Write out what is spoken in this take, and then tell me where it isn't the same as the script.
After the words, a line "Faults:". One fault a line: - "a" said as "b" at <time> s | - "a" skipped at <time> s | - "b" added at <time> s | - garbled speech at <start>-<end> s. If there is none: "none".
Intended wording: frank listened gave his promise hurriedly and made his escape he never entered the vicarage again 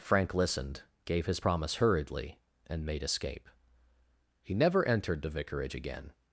frank listened gave his promise hurriedly and made escape he never entered the vicarage again
Faults:
- "his" skipped at 3.0 s